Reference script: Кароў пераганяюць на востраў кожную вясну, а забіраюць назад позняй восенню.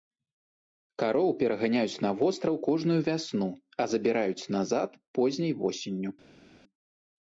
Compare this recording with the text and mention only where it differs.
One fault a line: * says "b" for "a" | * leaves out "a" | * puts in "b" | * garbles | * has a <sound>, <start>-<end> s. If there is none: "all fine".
all fine